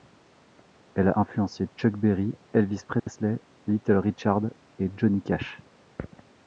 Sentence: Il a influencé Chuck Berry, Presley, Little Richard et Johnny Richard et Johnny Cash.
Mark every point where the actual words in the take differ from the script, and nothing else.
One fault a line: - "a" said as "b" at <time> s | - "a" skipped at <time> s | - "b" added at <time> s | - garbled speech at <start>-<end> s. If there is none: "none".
- "Il" said as "Elle" at 0.9 s
- "Elvis" added at 2.5 s
- "Richard et Johnny" skipped at 5.2 s